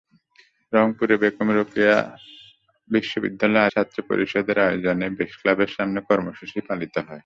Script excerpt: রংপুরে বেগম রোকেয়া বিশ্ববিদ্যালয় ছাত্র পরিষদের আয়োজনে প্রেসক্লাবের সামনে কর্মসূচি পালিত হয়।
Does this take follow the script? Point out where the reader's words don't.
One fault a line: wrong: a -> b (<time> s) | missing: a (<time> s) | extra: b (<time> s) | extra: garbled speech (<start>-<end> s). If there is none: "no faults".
no faults